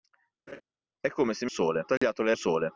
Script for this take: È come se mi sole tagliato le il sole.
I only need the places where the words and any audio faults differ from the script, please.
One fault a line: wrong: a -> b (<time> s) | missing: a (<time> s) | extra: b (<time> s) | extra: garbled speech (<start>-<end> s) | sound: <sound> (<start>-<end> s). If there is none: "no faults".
sound: laugh (0.5-0.6 s)
sound: dropout (2.0-2.0 s)